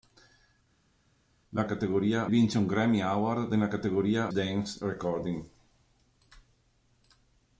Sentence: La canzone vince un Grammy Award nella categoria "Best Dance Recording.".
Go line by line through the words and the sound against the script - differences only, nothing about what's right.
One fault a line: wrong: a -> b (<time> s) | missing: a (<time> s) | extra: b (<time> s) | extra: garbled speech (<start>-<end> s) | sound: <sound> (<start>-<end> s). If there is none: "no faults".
wrong: canzone -> categoria (1.6 s)
missing: Best (4.3 s)